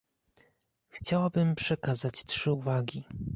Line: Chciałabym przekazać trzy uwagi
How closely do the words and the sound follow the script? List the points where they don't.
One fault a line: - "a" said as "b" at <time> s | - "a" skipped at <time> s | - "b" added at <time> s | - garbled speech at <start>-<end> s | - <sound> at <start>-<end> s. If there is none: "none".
none